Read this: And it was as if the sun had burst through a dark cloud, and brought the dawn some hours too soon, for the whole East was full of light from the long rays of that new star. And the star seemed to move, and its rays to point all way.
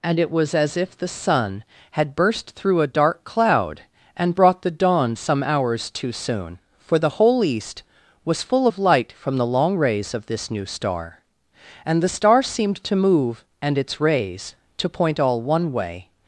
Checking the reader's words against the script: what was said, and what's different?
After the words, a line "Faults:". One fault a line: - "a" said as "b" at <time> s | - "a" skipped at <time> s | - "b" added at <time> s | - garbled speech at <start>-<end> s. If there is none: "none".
And it was as if the sun had burst through a dark cloud, and brought the dawn some hours too soon, for the whole East was full of light from the long rays of this new star. And the star seemed to move, and its rays to point all one way.
Faults:
- "that" said as "this" at 10.3 s
- "one" added at 15.4 s